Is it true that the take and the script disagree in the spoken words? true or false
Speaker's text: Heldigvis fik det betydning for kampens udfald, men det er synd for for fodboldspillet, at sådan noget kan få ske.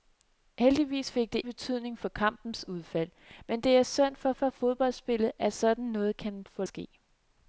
false